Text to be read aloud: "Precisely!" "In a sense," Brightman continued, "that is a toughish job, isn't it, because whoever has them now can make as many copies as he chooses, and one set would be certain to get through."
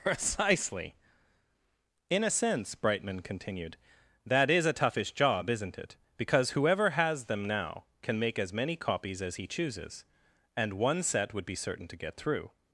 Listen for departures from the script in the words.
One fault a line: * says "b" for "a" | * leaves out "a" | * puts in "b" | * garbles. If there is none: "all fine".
all fine